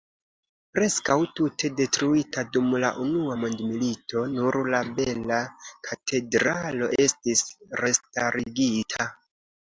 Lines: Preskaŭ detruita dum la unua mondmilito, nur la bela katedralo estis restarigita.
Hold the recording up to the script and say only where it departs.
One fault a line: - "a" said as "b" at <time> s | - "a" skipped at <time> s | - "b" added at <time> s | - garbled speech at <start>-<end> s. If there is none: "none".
- "tute" added at 1.4 s